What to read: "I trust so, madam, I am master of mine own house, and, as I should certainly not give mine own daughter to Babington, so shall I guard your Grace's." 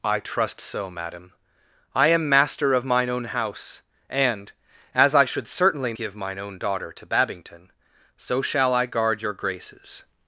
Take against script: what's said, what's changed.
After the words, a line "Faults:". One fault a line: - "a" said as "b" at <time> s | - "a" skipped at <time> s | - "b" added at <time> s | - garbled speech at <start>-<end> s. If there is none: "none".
"I trust so, madam, I am master of mine own house, and, as I should certainly give mine own daughter to Babington, so shall I guard your Grace's."
Faults:
- "not" skipped at 5.9 s